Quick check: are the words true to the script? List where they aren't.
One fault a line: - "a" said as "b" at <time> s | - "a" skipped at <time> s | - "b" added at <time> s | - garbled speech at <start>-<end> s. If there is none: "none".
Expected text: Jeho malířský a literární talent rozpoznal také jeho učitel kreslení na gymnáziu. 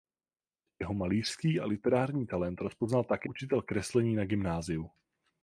- "jeho" skipped at 3.3 s